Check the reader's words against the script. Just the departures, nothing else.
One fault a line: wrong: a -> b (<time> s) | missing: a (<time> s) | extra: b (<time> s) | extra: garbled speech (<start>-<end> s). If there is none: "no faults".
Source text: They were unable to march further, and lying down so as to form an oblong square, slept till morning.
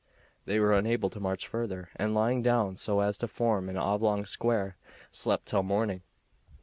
no faults